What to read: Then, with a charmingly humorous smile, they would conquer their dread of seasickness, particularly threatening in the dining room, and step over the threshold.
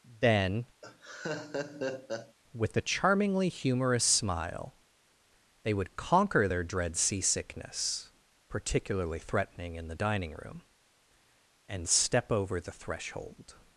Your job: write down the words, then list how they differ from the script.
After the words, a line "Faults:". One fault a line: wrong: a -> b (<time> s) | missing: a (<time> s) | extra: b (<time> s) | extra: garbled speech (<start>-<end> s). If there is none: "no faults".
Then, with a charmingly humorous smile, they would conquer their dread seasickness, particularly threatening in the dining room, and step over the threshold.
Faults:
missing: of (7.0 s)